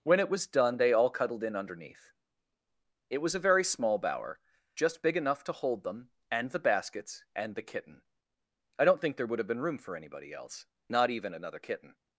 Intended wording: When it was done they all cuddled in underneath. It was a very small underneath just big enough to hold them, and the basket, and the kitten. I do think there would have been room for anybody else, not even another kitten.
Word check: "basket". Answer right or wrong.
wrong